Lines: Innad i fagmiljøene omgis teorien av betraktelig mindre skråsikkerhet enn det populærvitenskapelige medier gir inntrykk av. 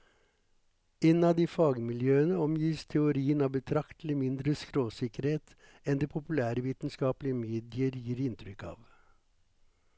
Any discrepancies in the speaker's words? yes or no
no